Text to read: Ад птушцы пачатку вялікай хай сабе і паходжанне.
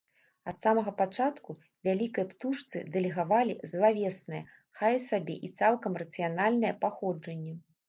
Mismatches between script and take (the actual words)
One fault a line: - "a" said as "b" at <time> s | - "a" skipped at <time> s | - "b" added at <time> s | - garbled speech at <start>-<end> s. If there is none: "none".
- "птушцы" said as "самага" at 0.7 s
- "птушцы дэлегавалі злавеснае" added at 2.3 s
- "цалкам рацыянальнае" added at 5.6 s